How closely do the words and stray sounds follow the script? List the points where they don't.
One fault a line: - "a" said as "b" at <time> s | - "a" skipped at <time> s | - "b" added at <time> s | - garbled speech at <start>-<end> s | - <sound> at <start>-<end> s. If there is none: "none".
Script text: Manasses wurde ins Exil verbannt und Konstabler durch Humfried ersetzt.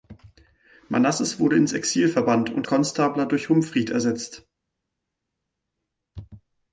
none